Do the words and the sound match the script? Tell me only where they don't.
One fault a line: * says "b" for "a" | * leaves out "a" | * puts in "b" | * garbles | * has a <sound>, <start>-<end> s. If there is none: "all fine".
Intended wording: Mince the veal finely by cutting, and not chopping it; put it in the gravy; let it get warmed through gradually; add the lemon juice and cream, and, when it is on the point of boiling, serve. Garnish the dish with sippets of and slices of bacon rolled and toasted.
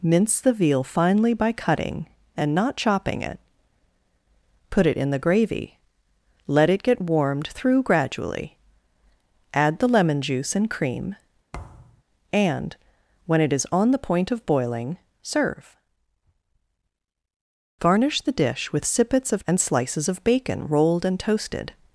* has a thud, 11.5-12.0 s